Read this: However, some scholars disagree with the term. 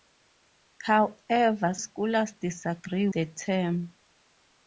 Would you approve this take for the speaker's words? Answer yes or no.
no